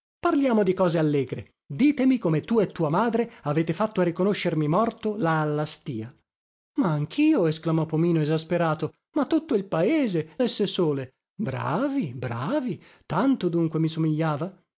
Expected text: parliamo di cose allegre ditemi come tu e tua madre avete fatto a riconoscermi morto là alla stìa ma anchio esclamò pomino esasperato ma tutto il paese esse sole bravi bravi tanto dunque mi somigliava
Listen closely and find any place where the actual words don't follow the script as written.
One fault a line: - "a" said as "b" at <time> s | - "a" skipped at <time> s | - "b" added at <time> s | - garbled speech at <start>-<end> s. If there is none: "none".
none